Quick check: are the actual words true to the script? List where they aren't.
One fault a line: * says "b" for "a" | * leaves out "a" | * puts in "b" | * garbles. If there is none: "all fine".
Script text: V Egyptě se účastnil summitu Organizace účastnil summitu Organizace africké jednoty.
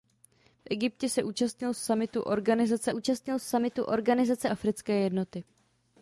all fine